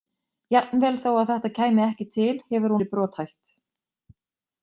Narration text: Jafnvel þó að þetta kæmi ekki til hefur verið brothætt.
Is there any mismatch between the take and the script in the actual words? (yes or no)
no